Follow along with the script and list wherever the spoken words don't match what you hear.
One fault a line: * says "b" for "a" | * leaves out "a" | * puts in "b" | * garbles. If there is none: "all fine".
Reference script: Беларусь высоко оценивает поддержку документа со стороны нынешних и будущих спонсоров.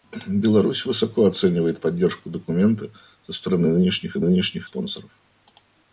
* says "нынешних" for "будущих"